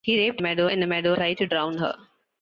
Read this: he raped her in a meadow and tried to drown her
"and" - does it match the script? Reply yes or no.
no